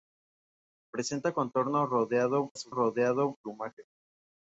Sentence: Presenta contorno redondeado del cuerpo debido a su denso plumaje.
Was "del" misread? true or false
true